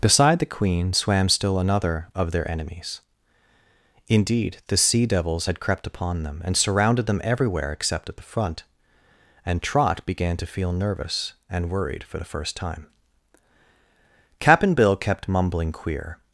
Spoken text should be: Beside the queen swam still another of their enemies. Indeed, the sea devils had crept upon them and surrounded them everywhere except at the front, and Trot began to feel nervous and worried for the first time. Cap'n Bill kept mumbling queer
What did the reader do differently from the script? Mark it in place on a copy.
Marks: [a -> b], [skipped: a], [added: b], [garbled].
Beside the queen swam still another of their enemies. Indeed, the sea devils had crept upon them and surrounded them everywhere except at the front, and Trot began to feel nervous and worried for the first time. Cap'n Bill kept mumbling queer